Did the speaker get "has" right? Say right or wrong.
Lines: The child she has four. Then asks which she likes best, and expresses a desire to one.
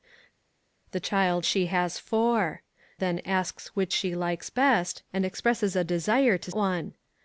right